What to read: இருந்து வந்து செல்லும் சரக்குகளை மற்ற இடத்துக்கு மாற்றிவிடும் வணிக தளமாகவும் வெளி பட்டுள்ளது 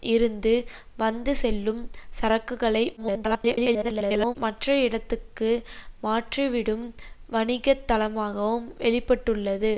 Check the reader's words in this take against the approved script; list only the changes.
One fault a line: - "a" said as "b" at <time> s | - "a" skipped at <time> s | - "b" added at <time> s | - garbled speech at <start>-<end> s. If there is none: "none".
- garbled speech at 3.0-4.4 s